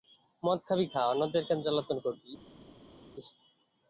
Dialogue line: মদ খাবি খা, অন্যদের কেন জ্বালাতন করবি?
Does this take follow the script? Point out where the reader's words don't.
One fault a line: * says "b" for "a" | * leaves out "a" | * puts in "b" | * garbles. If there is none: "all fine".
all fine